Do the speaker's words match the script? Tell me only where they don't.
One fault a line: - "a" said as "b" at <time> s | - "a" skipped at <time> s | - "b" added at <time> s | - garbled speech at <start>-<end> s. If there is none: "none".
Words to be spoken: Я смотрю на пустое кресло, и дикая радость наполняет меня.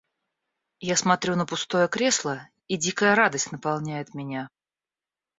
none